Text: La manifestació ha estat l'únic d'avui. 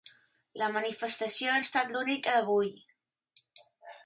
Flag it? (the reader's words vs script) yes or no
no